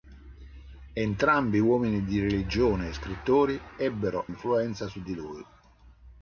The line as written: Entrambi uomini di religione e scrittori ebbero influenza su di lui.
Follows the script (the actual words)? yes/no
yes